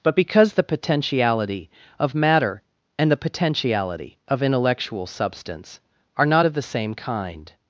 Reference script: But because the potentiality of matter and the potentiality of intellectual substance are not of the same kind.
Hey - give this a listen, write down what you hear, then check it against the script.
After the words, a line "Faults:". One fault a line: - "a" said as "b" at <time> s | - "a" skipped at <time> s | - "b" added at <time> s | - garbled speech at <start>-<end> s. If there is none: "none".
But because the potentiality of matter and the potentiality of intellectual substance are not of the same kind.
Faults:
none